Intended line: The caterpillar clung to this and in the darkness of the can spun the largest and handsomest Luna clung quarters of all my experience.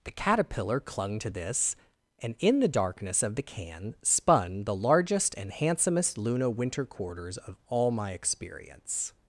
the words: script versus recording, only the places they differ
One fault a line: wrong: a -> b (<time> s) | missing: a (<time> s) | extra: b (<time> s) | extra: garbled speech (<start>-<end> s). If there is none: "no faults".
wrong: clung -> winter (6.5 s)